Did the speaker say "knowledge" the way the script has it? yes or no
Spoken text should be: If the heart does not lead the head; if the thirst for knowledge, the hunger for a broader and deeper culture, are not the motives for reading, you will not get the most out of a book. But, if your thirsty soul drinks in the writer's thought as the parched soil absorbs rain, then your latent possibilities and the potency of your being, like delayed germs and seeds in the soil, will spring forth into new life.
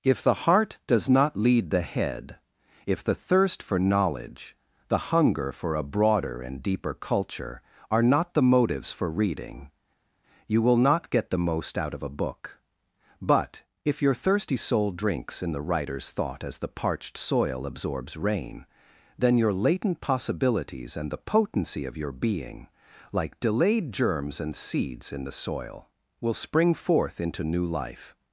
yes